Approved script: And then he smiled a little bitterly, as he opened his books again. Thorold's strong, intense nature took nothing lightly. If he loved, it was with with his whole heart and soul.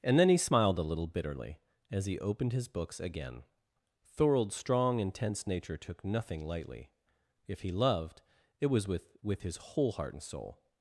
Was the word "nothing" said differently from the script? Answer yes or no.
no